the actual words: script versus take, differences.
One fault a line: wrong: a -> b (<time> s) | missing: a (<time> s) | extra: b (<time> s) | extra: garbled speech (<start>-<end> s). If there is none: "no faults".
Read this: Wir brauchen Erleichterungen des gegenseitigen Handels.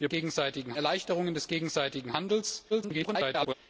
wrong: brauchen -> gegenseitigen (0.1 s)
extra: garbled speech (2.7-3.5 s)